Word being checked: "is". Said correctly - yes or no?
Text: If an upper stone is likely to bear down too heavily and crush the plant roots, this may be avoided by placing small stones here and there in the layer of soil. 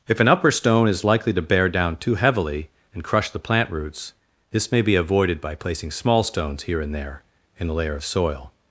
yes